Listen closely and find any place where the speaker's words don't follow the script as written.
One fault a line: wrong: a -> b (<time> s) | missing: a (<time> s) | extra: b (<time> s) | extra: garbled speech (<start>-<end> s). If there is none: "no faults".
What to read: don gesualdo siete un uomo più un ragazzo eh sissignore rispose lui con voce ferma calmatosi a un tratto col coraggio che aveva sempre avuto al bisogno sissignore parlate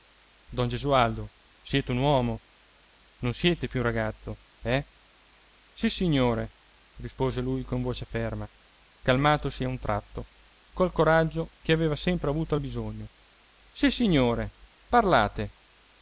extra: non siete (3.2 s)